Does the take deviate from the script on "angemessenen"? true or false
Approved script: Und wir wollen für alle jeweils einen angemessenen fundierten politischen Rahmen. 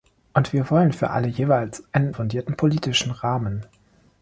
true